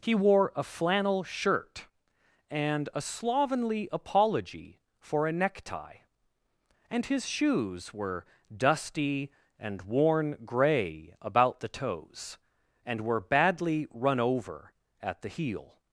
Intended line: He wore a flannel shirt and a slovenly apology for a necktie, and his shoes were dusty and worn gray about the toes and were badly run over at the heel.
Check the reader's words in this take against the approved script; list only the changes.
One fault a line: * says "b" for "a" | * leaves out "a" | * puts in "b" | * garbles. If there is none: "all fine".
all fine